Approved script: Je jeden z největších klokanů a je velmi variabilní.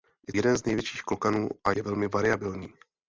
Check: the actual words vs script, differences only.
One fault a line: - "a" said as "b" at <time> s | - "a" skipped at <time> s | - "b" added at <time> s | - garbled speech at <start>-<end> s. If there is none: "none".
none